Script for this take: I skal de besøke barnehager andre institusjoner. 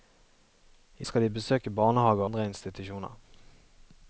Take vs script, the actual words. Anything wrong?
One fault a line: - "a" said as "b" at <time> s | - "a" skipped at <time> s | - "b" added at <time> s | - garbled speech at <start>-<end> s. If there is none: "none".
none